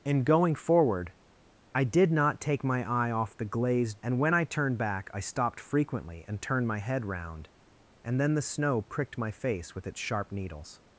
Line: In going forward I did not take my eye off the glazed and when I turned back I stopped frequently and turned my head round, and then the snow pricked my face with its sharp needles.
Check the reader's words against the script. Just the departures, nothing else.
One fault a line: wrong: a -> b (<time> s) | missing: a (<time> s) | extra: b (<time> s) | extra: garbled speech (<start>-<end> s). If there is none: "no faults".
no faults